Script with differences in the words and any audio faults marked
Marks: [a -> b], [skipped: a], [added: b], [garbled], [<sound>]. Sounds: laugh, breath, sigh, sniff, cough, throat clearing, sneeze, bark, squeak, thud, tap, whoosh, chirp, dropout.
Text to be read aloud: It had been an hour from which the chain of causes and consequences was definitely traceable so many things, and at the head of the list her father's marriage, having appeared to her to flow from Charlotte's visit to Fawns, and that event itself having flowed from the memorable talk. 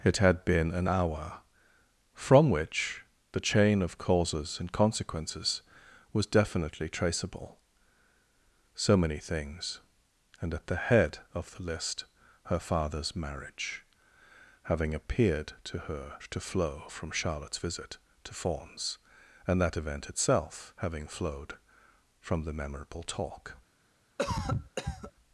It had been an hour from which the chain of causes and consequences was definitely traceable so many things, and at the head of the list her father's marriage, having appeared to her to flow from Charlotte's visit to Fawns, and that event itself having flowed from the memorable talk. [cough]